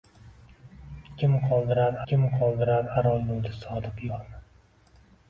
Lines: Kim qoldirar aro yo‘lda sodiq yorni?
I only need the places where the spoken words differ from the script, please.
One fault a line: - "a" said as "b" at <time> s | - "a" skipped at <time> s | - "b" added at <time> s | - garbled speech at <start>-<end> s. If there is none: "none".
- "kim qoldirar" added at 2.1 s